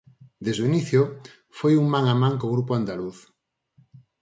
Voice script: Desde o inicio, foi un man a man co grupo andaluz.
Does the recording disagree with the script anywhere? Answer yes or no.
no